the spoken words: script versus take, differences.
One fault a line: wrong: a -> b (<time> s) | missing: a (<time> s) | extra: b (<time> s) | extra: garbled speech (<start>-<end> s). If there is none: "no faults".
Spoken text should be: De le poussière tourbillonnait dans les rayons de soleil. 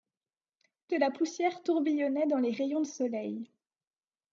wrong: le -> la (1.0 s)